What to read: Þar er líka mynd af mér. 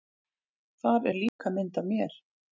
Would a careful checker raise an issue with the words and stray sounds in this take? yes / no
yes